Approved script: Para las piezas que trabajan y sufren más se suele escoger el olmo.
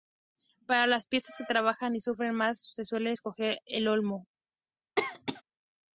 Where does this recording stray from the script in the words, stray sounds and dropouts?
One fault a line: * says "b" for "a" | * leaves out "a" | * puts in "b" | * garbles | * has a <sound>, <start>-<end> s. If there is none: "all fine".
* has a cough, 5.0-5.4 s